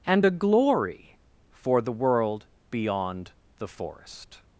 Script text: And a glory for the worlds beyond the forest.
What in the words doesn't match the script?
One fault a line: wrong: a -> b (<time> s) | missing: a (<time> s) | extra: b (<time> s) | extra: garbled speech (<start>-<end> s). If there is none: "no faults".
wrong: worlds -> world (1.9 s)